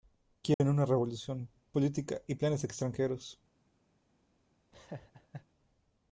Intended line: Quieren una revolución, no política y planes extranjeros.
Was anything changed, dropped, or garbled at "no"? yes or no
yes